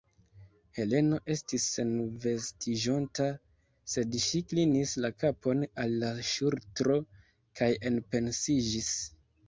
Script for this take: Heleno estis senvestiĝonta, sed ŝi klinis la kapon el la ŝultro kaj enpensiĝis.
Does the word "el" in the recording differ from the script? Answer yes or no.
yes